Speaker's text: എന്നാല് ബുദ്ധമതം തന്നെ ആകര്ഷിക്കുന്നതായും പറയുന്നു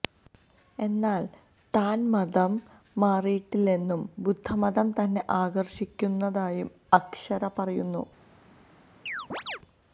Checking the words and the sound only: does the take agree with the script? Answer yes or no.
no